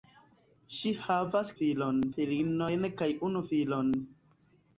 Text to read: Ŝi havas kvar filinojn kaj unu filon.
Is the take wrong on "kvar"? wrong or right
wrong